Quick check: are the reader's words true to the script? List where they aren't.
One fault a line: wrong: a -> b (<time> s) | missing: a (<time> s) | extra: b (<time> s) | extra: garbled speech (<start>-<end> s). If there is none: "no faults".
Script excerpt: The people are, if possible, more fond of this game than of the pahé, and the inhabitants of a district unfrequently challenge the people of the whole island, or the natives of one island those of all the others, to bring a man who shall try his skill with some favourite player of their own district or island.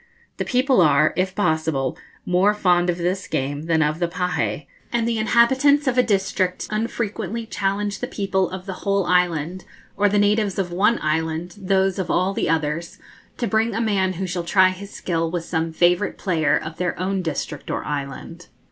no faults